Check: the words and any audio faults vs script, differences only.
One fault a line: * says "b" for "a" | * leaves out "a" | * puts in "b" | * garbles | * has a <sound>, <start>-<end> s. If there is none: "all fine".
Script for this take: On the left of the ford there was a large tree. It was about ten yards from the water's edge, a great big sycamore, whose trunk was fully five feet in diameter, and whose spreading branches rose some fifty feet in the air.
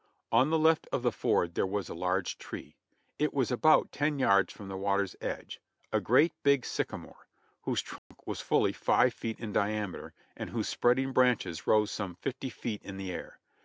* has a dropout, 8.0-8.1 s